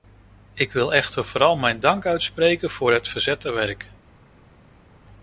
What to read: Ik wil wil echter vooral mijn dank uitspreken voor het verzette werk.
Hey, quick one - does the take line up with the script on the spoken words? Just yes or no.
no